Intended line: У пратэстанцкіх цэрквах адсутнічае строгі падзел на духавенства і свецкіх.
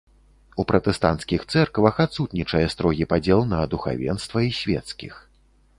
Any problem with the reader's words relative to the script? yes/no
no